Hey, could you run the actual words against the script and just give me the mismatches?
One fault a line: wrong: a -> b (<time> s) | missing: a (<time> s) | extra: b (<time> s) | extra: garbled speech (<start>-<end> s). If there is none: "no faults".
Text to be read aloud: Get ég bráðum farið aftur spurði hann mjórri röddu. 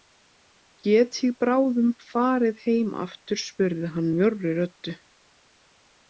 extra: heim (2.6 s)